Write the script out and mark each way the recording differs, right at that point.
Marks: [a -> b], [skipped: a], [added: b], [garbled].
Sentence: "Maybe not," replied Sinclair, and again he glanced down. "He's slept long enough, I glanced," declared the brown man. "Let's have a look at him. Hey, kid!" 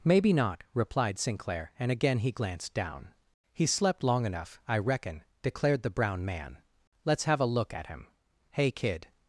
"Maybe not," replied Sinclair, and again he glanced down. "He's slept long enough, I [glanced," -> reckon] declared the brown man. "Let's have a look at him. Hey, kid!"